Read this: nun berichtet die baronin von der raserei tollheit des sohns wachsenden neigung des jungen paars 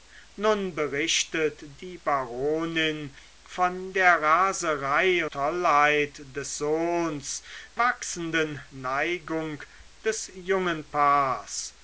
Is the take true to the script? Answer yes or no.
yes